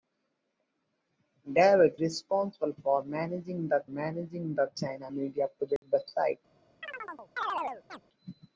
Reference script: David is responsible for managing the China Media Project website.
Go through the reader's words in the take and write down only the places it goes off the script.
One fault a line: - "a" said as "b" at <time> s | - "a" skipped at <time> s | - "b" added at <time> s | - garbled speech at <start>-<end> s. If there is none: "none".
- "is" skipped at 2.0 s
- "managing the" added at 3.9 s